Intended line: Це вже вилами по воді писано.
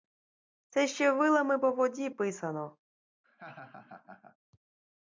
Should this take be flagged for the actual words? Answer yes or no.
yes